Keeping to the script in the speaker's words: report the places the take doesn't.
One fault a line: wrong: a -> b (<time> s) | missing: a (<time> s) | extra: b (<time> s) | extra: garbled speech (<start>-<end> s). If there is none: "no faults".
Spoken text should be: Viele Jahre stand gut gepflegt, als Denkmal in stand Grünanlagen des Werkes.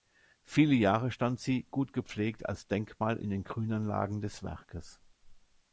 extra: sie (1.4 s)
wrong: stand -> den (3.3 s)